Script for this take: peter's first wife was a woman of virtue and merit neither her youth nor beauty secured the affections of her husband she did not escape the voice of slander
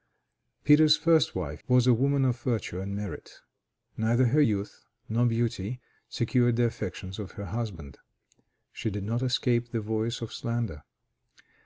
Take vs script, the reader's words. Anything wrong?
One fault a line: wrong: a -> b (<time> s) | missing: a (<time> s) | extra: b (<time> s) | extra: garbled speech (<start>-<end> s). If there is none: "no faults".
no faults